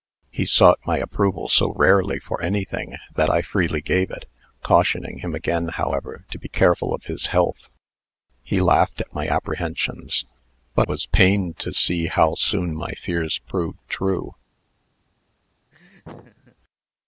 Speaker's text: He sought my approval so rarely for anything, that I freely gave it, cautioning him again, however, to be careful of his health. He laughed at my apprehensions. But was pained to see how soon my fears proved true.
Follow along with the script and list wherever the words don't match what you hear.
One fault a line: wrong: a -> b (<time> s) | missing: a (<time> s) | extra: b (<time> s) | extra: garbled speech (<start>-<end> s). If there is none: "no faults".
no faults